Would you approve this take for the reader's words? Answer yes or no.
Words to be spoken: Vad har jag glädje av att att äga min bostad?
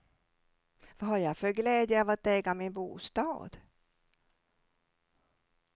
no